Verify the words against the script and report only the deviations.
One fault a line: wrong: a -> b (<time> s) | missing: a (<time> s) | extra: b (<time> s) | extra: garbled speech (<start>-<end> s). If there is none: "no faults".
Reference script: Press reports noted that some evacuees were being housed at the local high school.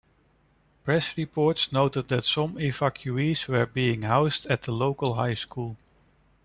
no faults